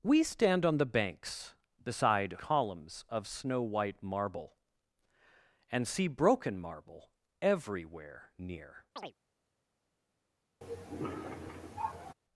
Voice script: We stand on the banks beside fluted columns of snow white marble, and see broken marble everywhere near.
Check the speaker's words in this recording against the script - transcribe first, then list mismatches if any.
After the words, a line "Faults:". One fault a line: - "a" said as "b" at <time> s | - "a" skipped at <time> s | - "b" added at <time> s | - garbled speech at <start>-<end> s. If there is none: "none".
We stand on the banks beside columns of snow white marble, and see broken marble everywhere near.
Faults:
- "fluted" skipped at 2.4 s